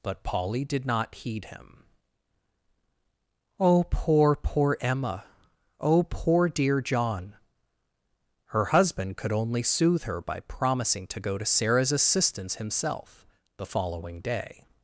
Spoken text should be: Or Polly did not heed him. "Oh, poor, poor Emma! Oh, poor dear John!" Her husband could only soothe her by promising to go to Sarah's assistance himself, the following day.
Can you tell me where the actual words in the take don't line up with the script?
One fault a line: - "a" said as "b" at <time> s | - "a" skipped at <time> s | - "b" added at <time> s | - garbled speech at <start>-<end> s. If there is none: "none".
- "Or" said as "But" at 0.0 s